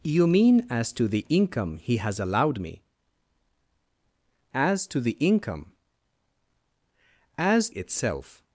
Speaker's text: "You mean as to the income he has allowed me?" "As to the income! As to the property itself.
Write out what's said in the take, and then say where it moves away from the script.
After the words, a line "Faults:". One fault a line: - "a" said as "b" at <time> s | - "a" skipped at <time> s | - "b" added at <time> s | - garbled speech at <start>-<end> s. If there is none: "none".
"You mean as to the income he has allowed me?" "As to the income! As itself.
Faults:
- "to the property" skipped at 7.7 s